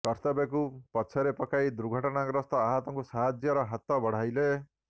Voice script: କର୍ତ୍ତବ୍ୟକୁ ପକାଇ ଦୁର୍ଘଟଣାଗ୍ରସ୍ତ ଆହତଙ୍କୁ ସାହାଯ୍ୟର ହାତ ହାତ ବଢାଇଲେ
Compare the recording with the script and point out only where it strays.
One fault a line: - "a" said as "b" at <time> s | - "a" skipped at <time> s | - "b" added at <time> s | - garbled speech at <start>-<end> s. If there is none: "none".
- "ପଛରେ" added at 0.9 s
- "ହାତ" skipped at 4.0 s